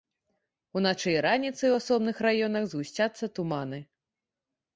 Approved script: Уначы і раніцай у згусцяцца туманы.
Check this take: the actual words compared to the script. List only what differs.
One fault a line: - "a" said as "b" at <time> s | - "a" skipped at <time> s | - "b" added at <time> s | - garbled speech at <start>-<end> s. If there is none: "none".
- "асобных раёнах" added at 1.8 s